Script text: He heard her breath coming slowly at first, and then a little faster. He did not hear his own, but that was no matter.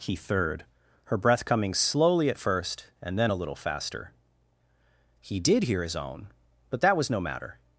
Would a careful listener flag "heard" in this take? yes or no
yes